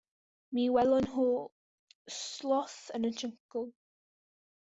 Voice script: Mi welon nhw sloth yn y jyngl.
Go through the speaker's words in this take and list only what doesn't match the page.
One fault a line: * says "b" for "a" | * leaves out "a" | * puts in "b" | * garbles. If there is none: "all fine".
all fine